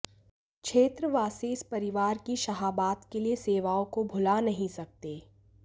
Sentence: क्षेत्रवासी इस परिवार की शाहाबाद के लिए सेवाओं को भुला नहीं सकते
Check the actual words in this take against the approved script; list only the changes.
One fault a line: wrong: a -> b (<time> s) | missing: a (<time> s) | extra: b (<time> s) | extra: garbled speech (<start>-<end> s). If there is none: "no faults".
no faults